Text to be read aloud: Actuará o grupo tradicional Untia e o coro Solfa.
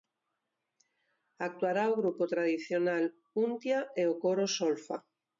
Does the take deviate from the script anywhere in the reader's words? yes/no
no